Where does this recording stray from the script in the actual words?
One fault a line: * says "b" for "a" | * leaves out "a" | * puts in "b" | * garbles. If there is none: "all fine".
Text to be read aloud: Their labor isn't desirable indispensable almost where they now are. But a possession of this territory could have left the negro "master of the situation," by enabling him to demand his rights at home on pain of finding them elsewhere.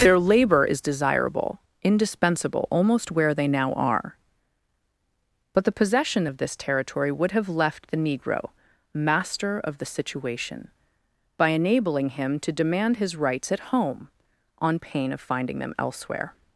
* says "is" for "isn't"
* says "the" for "a"
* says "would" for "could"